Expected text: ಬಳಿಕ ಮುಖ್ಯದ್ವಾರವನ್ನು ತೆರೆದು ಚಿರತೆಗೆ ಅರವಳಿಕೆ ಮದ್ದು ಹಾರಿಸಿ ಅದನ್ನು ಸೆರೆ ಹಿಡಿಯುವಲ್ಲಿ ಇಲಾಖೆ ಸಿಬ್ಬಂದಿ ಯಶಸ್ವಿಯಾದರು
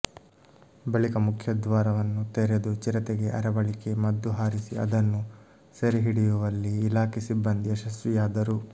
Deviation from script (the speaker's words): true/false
false